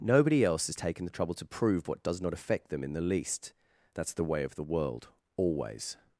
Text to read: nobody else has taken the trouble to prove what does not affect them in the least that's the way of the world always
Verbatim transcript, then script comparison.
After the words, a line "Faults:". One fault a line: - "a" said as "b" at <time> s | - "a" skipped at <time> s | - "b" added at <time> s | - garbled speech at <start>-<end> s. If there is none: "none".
nobody else has taken the trouble to prove what does not affect them in the least that's the way of the world always
Faults:
none